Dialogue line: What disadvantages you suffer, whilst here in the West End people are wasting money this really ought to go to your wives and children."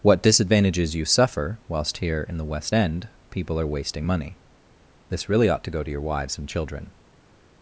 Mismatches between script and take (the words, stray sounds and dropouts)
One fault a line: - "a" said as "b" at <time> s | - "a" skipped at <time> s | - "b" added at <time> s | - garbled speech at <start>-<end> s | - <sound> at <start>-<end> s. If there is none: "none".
none